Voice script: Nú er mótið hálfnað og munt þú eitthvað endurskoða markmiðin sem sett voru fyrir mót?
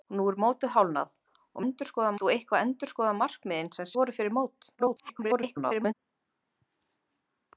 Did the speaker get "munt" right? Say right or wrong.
wrong